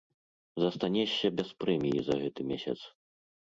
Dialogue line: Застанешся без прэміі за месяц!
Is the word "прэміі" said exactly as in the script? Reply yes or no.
yes